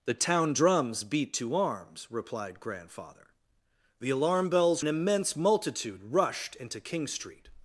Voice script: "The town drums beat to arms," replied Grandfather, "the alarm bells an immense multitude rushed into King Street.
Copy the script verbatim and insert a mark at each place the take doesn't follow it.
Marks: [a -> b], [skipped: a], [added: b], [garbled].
"The town drums beat to arms," replied Grandfather, "the alarm bells an immense multitude rushed into King Street.